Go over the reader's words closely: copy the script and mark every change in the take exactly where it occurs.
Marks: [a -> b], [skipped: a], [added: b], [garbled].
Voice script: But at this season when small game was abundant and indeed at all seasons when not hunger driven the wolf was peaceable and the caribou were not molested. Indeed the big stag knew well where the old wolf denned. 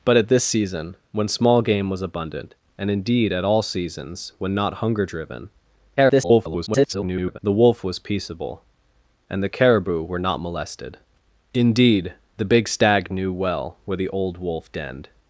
But at this season when small game was abundant and indeed at all seasons when not hunger driven [garbled] the wolf was peaceable and the caribou were not molested. Indeed the big stag knew well where the old wolf denned.